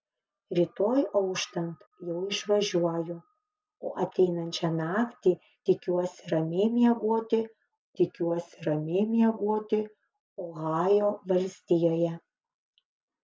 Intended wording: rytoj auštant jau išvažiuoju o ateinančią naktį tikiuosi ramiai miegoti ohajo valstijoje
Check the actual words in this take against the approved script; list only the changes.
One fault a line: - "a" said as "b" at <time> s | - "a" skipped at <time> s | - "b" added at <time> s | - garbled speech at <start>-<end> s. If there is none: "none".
- "tikiuosi ramiai miegoti" added at 8.0 s